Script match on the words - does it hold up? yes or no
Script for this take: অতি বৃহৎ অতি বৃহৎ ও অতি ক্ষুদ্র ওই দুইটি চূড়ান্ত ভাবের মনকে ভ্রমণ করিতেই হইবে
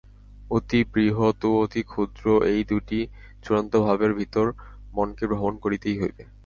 no